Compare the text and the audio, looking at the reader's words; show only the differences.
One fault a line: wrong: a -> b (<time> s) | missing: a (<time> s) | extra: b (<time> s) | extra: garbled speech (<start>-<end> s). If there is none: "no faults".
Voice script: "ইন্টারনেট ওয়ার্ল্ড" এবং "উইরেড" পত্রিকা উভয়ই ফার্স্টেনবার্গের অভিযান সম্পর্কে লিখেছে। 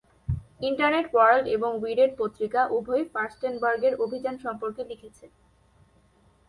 no faults